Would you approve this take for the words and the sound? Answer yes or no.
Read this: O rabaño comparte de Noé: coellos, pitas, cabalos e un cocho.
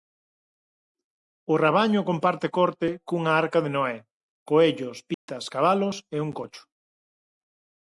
no